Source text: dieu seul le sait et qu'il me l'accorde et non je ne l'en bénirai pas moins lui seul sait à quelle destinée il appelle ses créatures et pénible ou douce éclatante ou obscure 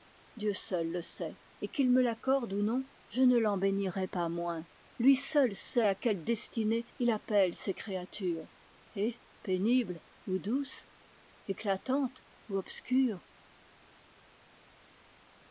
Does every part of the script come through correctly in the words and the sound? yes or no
no